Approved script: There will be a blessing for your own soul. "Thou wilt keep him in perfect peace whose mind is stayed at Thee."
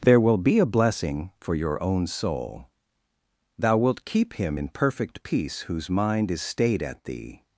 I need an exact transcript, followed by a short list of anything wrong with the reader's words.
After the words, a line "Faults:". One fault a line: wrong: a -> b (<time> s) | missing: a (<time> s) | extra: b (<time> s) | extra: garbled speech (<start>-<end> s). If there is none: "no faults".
There will be a blessing for your own soul. "Thou wilt keep him in perfect peace whose mind is stayed at Thee."
Faults:
no faults